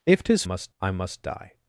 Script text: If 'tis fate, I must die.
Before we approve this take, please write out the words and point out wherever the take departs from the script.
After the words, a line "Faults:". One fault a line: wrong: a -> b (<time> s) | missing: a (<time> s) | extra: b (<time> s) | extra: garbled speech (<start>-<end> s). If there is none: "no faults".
If 'tis must, I must die.
Faults:
wrong: fate -> must (0.4 s)